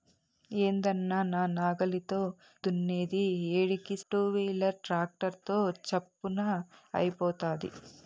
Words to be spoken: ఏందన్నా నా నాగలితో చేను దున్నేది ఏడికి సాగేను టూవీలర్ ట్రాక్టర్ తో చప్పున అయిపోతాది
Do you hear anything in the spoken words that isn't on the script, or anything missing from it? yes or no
yes